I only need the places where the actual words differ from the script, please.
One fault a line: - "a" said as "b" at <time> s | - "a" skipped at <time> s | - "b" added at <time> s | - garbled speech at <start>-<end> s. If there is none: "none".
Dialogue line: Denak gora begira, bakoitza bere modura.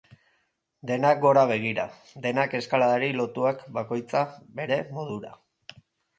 - "denak eskaladari lotuak" added at 2.2 s